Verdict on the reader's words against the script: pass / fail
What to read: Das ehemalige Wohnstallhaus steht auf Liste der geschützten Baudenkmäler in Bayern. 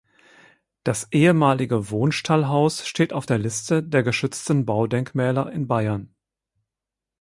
fail